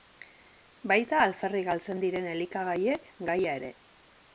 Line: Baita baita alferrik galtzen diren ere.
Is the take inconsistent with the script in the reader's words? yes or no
yes